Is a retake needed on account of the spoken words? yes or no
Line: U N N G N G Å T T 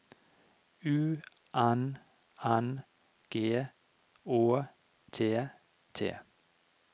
yes